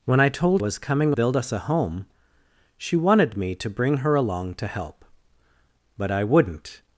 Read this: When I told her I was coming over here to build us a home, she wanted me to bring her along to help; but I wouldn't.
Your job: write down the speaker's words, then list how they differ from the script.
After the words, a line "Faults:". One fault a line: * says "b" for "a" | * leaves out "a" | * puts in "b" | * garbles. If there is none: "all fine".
When I told was coming build us a home, she wanted me to bring her along to help; but I wouldn't.
Faults:
* leaves out "her I"
* leaves out "over here to"